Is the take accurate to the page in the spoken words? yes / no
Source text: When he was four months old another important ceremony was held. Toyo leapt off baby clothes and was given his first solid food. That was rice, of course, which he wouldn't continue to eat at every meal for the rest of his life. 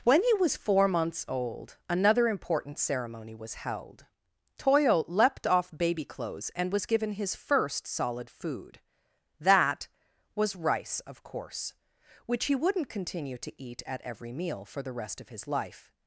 yes